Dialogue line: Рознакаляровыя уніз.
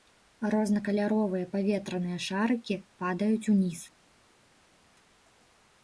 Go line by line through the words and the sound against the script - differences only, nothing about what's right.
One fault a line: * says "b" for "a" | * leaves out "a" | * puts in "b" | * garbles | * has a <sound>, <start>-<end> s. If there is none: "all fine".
* puts in "паветраныя шарыкі падаюць"